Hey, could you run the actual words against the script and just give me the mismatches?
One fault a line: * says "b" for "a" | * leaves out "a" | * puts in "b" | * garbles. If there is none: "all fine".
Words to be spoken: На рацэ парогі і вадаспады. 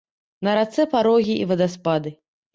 all fine